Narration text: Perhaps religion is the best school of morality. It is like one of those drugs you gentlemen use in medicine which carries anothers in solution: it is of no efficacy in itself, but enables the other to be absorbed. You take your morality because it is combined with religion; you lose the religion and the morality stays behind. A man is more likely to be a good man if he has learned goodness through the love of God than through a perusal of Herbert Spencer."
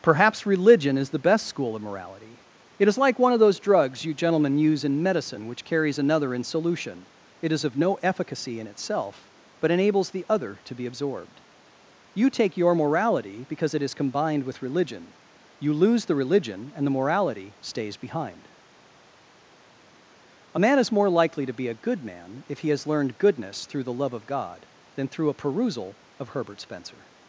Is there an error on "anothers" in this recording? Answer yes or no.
yes